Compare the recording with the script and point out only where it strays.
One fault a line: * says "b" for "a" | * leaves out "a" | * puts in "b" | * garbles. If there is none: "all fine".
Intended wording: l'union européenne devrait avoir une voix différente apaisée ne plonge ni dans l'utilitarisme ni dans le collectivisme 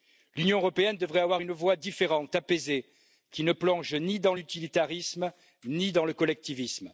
* puts in "qui"